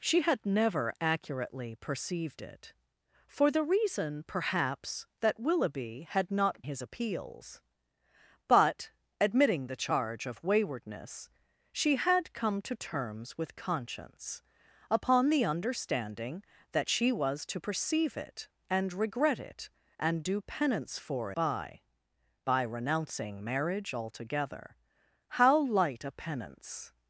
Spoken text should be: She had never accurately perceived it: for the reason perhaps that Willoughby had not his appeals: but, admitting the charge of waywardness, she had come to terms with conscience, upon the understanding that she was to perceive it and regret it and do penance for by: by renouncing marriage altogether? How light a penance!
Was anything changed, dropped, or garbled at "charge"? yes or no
no